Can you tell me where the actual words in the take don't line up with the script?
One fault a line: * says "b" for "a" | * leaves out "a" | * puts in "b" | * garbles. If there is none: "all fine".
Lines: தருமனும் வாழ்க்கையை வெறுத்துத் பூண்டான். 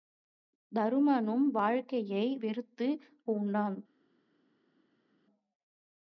all fine